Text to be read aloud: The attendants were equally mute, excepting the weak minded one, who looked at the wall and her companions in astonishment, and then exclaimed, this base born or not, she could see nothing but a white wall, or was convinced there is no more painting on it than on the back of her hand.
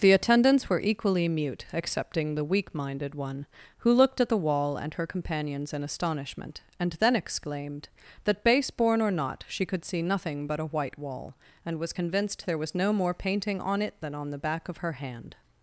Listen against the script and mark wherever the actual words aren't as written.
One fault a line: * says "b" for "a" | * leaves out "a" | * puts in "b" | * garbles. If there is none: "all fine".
* says "that" for "this"
* says "and" for "or"
* says "was" for "is"